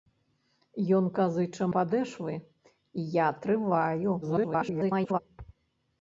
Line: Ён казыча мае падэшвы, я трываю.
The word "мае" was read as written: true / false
false